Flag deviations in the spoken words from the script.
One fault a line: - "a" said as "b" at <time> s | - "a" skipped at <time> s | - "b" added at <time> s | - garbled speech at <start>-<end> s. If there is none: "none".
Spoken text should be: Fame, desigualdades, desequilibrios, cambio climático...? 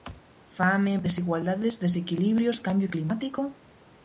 none